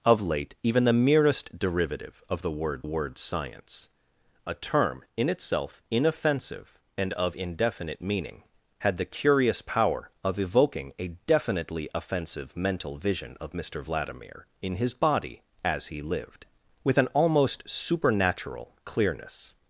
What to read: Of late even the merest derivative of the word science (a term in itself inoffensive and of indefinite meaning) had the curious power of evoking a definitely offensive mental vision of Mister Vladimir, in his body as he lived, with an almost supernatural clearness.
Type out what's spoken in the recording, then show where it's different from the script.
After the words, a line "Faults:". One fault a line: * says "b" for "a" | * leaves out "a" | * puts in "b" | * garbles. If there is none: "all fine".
Of late even the merest derivative of the word word science (a term in itself inoffensive and of indefinite meaning) had the curious power of evoking a definitely offensive mental vision of Mister Vladimir, in his body as he lived, with an almost supernatural clearness.
Faults:
* puts in "word"